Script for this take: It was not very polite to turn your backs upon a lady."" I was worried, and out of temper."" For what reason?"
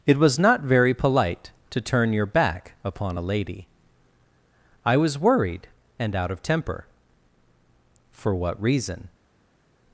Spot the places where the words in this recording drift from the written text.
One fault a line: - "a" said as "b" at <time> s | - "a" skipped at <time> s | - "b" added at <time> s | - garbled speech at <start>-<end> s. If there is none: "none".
- "backs" said as "back" at 2.2 s